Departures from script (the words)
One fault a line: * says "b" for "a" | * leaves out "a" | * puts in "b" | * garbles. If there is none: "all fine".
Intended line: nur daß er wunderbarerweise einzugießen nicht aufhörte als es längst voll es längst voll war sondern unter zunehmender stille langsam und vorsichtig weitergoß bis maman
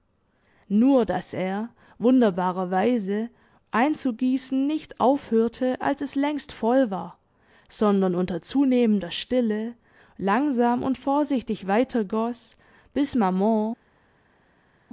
* leaves out "es längst voll"